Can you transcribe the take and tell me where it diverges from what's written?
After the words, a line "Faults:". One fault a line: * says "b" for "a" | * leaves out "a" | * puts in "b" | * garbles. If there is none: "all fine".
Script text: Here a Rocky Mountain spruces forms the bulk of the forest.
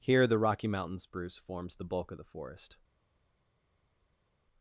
Here the Rocky Mountain spruce forms the bulk of the forest.
Faults:
* says "the" for "a"
* says "spruce" for "spruces"